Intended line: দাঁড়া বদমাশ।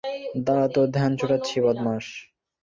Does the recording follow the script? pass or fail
fail